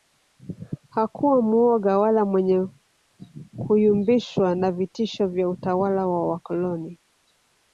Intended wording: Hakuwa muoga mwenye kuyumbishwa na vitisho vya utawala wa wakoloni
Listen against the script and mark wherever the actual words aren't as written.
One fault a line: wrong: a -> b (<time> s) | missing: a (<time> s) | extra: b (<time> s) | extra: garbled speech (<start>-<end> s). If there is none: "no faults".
extra: wala (2.0 s)